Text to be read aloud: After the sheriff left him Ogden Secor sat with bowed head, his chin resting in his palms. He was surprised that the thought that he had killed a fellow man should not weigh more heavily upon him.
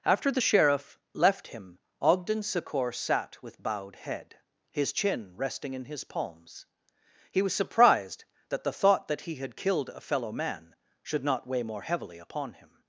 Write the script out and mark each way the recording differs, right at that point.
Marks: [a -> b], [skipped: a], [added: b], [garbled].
After the sheriff left him Ogden Secor sat with bowed head, his chin resting in his palms. He was surprised that the thought that he had killed a fellow man should not weigh more heavily upon him.